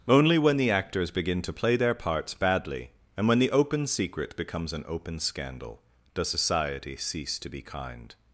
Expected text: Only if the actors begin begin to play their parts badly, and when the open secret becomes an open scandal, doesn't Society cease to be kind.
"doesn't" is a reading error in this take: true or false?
true